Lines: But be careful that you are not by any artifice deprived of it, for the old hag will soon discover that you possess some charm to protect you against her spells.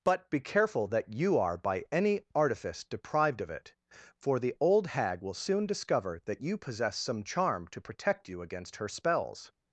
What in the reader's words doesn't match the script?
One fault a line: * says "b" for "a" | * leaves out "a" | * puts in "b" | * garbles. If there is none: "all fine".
* leaves out "not"